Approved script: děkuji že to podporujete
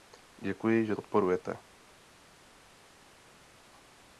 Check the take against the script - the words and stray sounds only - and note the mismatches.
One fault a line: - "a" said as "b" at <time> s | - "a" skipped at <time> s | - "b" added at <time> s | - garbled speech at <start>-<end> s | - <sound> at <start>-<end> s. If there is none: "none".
- "to" skipped at 0.9 s